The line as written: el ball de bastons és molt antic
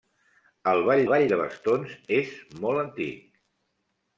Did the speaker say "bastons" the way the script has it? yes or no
yes